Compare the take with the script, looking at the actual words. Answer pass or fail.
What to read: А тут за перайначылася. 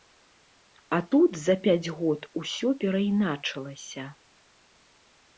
fail